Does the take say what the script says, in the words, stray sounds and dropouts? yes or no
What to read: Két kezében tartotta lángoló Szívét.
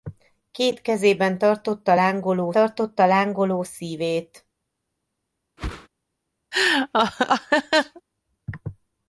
no